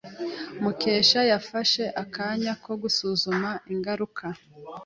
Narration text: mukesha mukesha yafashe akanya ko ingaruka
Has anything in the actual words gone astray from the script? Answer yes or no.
yes